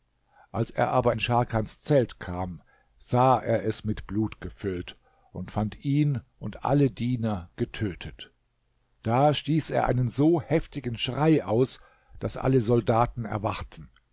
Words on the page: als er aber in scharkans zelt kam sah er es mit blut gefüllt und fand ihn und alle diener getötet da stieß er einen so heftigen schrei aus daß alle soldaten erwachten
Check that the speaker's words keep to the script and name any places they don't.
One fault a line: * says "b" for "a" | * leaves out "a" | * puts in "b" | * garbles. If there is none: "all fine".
all fine